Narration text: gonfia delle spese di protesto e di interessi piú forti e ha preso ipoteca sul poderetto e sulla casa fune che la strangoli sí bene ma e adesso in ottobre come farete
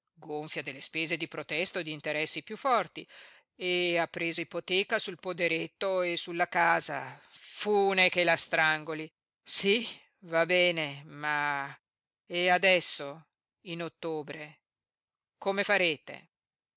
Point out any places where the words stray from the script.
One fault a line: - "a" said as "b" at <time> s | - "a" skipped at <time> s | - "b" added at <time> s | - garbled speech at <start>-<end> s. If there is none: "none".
- "va" added at 10.2 s